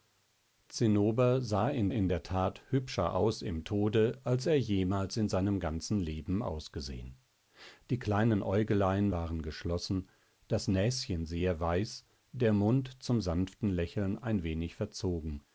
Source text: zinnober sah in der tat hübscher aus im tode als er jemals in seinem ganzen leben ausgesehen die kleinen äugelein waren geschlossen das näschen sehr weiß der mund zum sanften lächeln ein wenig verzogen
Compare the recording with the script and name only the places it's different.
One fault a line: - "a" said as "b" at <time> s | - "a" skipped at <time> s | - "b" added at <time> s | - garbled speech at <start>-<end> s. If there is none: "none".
- "in" added at 1.9 s